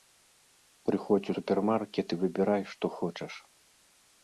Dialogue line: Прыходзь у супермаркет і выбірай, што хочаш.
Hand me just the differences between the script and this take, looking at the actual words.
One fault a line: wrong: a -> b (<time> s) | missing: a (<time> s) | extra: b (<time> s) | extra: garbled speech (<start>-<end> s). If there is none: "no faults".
no faults